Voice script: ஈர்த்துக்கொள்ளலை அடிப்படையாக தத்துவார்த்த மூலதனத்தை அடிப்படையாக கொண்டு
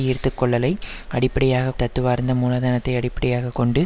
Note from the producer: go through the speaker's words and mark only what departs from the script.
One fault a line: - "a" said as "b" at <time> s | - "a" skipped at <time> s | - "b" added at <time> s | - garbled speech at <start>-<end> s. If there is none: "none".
none